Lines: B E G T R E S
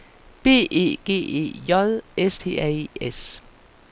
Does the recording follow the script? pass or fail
fail